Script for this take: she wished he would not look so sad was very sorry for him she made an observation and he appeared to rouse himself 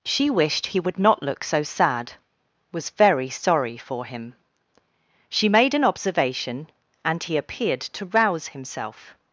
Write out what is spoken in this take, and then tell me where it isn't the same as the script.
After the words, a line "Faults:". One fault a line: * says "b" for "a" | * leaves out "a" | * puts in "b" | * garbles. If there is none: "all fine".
she wished he would not look so sad was very sorry for him she made an observation and he appeared to rouse himself
Faults:
all fine